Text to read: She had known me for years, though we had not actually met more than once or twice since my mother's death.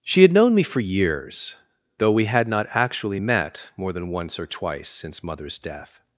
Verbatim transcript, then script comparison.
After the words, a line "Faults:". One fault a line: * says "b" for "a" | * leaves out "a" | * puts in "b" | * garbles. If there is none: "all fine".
She had known me for years, though we had not actually met more than once or twice since mother's death.
Faults:
* leaves out "my"